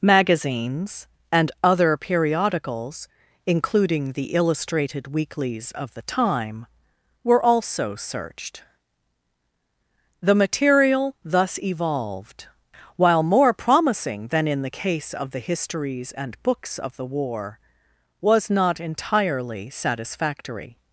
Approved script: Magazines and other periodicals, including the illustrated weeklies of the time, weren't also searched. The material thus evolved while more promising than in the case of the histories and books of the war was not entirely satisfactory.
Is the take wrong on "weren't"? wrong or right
wrong